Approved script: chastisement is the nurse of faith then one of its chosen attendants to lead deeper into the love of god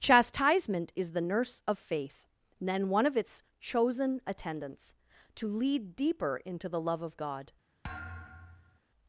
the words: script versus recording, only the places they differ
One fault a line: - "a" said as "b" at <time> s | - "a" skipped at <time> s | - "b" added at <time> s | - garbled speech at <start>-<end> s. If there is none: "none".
none